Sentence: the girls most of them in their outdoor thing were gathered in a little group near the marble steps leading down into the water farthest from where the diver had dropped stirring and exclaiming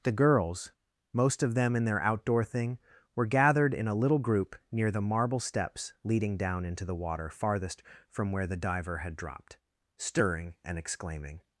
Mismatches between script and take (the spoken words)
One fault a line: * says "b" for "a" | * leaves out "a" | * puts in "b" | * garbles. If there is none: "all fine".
all fine